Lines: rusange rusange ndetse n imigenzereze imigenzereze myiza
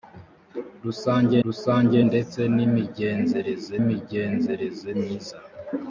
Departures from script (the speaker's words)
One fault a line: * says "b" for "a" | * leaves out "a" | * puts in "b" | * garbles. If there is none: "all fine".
all fine